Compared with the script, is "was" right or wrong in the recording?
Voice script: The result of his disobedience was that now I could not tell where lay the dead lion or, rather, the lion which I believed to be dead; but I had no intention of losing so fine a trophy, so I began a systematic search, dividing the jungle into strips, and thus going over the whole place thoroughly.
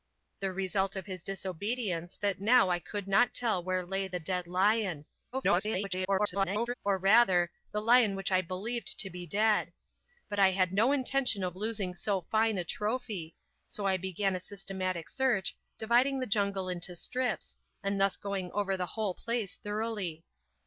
wrong